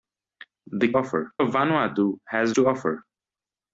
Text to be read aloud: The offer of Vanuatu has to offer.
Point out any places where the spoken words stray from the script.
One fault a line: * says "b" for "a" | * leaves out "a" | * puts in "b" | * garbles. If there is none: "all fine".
all fine